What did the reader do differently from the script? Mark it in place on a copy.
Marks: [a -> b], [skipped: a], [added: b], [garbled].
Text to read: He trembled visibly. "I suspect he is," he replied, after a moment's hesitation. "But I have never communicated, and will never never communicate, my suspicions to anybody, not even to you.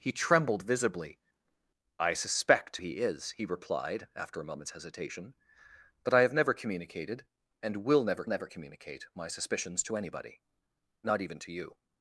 He trembled visibly. "I suspect he is," he replied, after a moment's hesitation. "But I have never communicated, and will never never communicate, my suspicions to anybody, not even to you.